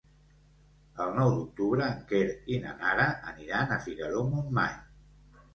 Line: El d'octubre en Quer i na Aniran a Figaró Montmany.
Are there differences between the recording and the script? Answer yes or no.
yes